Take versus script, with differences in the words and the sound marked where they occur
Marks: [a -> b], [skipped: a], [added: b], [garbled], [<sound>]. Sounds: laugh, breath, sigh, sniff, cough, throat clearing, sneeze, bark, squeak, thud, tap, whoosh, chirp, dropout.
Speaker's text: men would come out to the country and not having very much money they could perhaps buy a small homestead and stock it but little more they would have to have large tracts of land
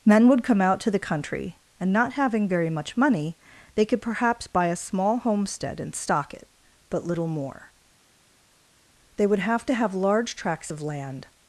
men would come out to the country and not having very much money they could perhaps buy a small homestead and stock it but little more they would have to have large tracts of land